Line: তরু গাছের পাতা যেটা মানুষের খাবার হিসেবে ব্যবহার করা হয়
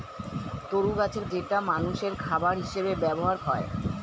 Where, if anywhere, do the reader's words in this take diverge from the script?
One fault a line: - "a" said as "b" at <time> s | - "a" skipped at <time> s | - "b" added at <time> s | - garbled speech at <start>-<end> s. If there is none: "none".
- "পাতা" skipped at 1.2 s
- "করা" skipped at 3.4 s